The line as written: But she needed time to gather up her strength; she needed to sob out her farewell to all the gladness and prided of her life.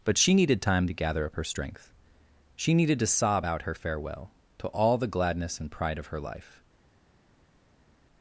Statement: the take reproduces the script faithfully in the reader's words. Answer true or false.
false